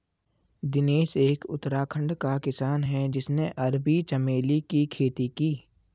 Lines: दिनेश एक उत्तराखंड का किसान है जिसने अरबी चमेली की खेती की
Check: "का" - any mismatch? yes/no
no